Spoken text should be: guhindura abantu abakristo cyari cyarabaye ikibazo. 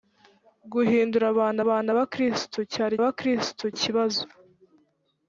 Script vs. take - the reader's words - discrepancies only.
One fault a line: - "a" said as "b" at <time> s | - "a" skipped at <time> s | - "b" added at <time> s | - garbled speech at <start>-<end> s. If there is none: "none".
- "abantu" added at 1.6 s
- "cyarabaye" said as "abakristo" at 3.0 s